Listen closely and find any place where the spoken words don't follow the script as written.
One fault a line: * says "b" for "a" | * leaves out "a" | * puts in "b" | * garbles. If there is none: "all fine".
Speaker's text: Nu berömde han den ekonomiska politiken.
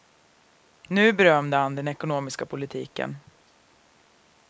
all fine